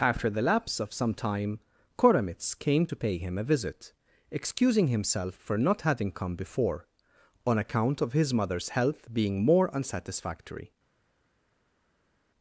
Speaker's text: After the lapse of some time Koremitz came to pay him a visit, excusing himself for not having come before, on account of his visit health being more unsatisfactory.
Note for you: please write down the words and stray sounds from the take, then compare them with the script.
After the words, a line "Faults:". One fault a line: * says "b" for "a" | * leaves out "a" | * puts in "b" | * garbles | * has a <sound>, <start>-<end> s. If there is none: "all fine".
After the lapse of some time Koremitz came to pay him a visit, excusing himself for not having come before, on account of his mother's health being more unsatisfactory.
Faults:
* says "mother's" for "visit"